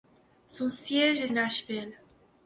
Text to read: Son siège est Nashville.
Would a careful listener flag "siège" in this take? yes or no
no